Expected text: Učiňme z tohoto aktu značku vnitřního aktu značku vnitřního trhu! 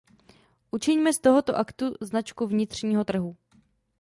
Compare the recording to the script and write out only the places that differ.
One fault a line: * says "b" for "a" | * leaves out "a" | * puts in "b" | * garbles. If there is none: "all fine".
* leaves out "aktu značku vnitřního"